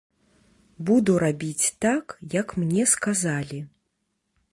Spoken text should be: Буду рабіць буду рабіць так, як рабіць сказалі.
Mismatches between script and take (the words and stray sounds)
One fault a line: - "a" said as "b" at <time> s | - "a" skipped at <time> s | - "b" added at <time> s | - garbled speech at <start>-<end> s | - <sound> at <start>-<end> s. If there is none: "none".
- "буду рабіць" skipped at 1.7 s
- "рабіць" said as "мне" at 2.6 s